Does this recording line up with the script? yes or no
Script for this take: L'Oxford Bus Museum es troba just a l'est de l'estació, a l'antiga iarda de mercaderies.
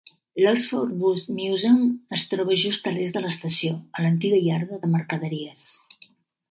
yes